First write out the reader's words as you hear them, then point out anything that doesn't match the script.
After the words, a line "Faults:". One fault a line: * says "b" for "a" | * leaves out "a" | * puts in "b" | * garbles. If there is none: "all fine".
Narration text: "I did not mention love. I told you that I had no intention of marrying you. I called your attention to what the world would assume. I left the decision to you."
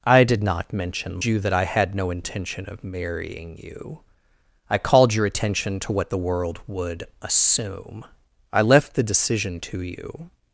"I did not mention you that I had no intention of marrying you. I called your attention to what the world would assume. I left the decision to you."
Faults:
* leaves out "love I told"